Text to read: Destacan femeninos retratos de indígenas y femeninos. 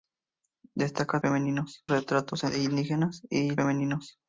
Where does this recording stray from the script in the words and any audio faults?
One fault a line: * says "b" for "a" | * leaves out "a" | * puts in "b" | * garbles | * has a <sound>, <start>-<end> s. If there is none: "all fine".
all fine